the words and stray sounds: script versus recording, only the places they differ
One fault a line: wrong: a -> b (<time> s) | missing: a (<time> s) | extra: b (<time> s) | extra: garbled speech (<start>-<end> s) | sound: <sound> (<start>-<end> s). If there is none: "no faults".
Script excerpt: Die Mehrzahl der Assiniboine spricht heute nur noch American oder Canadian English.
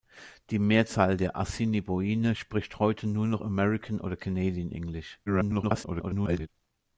extra: garbled speech (5.3-6.5 s)